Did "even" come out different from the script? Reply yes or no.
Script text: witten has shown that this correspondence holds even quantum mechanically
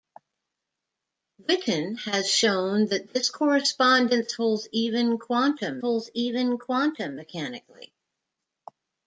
no